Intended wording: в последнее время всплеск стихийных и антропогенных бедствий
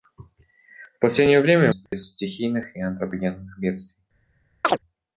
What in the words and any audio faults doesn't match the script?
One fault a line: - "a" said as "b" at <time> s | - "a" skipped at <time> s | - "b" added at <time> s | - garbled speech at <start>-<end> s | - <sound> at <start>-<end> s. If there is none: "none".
- dropout at 1.9-1.9 s
- chirp at 4.6-4.8 s